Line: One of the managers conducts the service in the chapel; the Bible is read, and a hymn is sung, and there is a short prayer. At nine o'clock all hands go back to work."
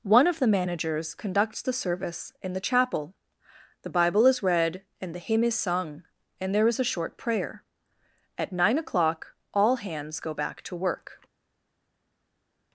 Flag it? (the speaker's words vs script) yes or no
yes